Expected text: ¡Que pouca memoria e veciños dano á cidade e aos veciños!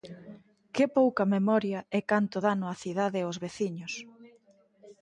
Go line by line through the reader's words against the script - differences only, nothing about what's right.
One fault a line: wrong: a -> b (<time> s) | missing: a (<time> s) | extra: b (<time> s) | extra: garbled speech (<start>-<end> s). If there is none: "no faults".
wrong: veciños -> canto (2.1 s)